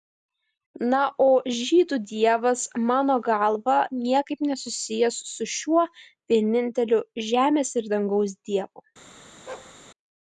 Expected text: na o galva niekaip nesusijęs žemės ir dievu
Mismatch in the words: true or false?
true